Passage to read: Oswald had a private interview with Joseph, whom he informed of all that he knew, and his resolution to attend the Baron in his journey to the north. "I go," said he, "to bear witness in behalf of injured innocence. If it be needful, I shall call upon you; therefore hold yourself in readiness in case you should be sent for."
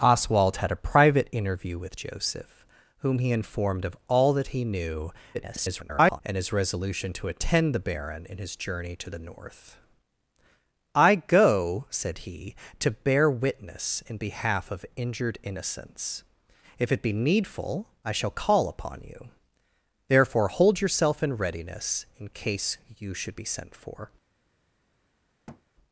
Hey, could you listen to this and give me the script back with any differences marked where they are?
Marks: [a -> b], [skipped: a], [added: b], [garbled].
Oswald had a private interview with Joseph, whom he informed of all that he knew, [garbled] and his resolution to attend the Baron in his journey to the north. "I go," said he, "to bear witness in behalf of injured innocence. If it be needful, I shall call upon you; therefore hold yourself in readiness in case you should be sent for."